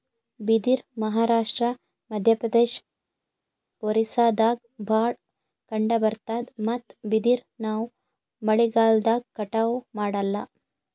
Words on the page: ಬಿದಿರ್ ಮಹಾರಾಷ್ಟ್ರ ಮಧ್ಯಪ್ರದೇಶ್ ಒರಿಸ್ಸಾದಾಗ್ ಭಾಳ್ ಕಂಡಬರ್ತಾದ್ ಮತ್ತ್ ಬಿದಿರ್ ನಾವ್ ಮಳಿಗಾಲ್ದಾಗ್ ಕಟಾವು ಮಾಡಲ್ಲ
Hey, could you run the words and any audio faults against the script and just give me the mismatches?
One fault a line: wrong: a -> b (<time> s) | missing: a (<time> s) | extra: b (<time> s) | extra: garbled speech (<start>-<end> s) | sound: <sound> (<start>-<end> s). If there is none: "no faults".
no faults